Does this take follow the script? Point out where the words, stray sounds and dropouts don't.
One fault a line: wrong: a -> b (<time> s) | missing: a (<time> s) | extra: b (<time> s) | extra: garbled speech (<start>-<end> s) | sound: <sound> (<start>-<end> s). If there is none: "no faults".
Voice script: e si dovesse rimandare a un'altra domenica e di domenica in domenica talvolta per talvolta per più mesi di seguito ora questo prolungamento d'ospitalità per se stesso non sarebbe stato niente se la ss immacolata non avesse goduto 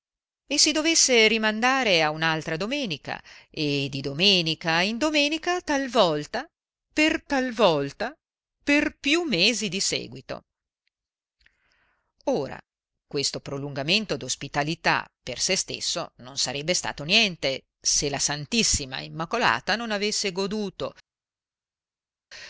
no faults